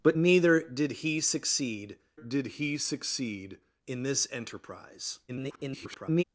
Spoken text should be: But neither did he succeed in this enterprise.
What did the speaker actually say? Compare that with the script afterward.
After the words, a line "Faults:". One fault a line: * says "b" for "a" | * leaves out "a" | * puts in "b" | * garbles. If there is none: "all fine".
But neither did he succeed did he succeed in this enterprise. [garbled]
Faults:
* puts in "did he succeed"
* garbles